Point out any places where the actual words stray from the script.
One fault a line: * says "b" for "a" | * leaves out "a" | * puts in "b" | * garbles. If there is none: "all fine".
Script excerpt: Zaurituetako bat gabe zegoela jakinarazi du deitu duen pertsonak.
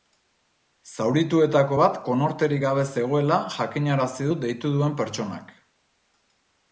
* puts in "konorterik"